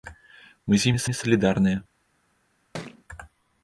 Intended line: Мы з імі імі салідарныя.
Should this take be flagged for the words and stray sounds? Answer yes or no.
yes